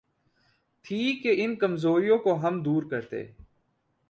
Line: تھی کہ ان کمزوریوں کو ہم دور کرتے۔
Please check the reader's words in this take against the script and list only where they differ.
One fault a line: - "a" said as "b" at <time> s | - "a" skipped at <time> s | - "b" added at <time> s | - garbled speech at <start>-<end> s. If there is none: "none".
none